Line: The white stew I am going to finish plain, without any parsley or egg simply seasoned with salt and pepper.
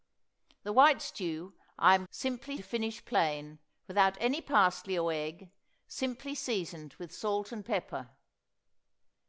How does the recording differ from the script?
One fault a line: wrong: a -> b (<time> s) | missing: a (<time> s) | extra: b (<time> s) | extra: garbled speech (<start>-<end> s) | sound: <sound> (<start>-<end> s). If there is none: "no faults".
wrong: going -> simply (2.1 s)